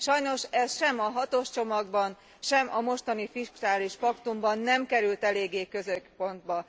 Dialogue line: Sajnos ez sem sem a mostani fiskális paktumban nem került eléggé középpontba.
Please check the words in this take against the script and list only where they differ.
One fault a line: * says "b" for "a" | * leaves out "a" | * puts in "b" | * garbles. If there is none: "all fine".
* puts in "a hatos csomagban"